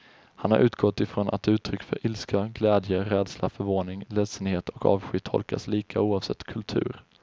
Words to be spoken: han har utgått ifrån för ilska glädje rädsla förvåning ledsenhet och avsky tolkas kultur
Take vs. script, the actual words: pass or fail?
fail